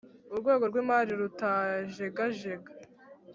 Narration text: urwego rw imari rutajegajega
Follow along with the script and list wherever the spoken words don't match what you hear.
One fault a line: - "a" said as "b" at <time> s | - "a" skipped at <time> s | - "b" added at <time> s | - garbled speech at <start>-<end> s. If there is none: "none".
none